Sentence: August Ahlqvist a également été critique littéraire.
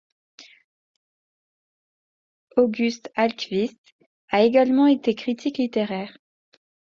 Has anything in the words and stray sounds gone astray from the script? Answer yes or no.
no